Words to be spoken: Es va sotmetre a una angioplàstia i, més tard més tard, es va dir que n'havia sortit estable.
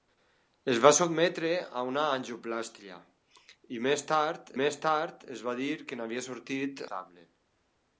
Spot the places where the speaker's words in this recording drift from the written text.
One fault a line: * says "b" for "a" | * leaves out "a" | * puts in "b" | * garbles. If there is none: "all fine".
all fine